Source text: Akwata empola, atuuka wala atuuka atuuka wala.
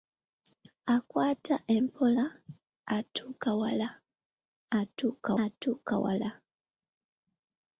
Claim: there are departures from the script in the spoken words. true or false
false